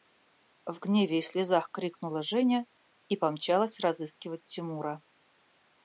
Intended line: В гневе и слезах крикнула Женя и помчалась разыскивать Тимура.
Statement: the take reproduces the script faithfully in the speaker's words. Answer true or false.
true